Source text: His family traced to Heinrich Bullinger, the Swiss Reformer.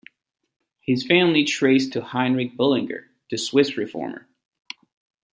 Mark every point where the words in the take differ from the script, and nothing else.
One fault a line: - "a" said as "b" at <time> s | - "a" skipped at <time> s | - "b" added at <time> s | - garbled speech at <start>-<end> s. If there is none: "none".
none